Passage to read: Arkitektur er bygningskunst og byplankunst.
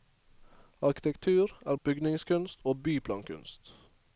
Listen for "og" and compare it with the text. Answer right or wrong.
right